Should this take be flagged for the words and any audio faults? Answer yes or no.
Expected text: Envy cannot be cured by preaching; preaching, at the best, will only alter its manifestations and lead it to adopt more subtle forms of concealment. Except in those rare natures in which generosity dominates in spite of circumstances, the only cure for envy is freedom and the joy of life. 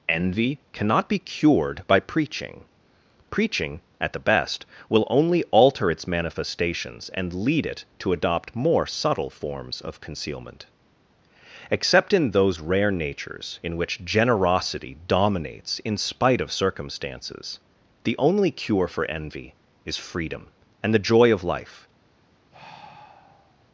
yes